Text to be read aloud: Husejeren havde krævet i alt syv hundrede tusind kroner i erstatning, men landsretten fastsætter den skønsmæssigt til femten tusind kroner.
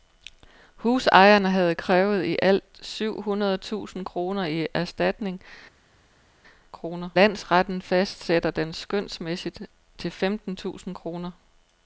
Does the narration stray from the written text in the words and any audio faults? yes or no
yes